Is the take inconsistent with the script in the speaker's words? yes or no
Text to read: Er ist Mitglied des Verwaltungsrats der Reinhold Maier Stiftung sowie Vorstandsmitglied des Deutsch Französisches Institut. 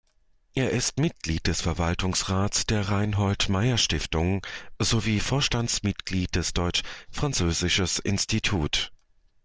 no